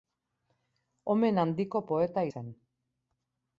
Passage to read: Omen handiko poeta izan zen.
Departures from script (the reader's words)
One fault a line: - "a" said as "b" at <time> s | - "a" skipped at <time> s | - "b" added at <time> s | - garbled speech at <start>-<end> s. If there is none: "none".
- "izan" skipped at 2.2 s